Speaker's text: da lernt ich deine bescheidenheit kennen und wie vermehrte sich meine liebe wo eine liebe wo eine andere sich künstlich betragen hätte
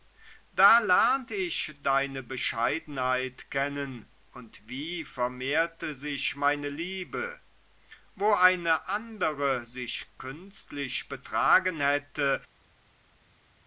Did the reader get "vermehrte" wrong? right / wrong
right